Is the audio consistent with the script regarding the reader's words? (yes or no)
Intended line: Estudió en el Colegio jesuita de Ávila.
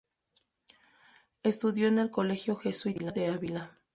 yes